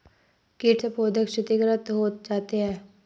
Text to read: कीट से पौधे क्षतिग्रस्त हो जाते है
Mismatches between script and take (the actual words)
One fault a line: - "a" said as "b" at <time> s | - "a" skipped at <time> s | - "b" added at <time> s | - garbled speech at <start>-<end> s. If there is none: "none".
none